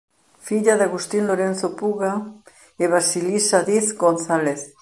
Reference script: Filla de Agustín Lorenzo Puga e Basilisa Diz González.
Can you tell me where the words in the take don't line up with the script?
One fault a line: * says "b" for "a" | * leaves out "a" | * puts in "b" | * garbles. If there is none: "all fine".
all fine